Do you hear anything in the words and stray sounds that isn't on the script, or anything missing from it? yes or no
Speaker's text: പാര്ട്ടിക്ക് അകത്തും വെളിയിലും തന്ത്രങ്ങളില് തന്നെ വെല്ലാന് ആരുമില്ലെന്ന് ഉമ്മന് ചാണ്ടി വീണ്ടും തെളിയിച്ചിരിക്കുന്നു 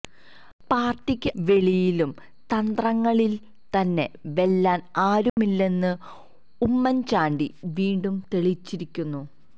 yes